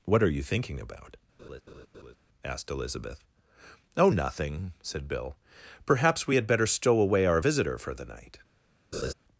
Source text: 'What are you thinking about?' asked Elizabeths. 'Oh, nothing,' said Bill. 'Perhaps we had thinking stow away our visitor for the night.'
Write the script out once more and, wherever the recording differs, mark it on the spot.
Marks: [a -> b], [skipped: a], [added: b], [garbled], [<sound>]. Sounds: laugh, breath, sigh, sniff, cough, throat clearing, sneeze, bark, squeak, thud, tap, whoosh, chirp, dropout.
'What are you thinking about?' [laugh] asked [Elizabeths. -> Elizabeth] 'Oh, nothing,' said Bill. 'Perhaps we had [thinking -> better] stow away our visitor for the night.' [laugh]